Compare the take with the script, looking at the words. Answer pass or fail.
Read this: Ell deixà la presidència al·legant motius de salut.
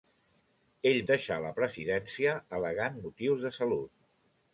pass